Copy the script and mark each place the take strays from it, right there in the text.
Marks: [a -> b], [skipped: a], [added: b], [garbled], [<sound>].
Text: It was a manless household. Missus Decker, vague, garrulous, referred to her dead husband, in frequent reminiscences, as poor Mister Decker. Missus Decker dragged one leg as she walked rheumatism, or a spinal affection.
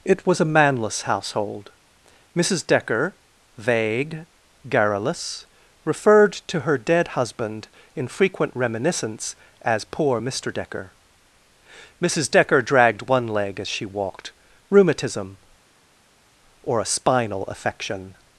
It was a manless household. Missus Decker, vague, garrulous, referred to her dead husband, in frequent [reminiscences, -> reminiscence] as poor Mister Decker. Missus Decker dragged one leg as she walked rheumatism, or a spinal affection.